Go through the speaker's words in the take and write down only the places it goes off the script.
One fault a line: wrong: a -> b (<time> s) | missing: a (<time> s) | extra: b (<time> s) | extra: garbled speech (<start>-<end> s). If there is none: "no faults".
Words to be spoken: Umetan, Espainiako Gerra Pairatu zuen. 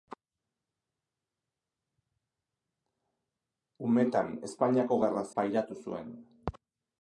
no faults